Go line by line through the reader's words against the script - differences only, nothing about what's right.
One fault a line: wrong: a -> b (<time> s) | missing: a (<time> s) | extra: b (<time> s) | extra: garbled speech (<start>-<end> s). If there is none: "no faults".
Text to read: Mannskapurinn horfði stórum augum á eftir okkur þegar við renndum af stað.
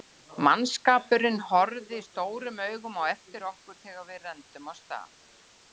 no faults